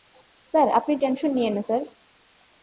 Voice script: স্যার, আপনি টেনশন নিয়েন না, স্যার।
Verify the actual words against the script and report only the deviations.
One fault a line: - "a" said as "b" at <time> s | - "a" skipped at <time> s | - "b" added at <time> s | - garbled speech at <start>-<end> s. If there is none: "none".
none